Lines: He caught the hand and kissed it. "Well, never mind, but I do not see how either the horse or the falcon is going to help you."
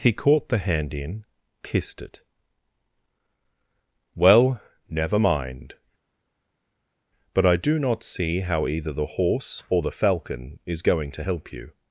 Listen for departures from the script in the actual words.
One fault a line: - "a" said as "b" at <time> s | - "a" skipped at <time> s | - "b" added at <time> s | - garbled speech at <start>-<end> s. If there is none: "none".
- "and" said as "in" at 0.9 s